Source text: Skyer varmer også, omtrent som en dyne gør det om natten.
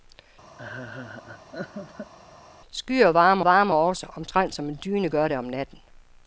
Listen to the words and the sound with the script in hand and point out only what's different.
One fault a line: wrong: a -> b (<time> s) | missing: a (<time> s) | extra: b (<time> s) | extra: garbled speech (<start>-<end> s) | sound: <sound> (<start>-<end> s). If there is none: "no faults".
sound: laugh (0.6-2.1 s)
extra: varmer (3.4 s)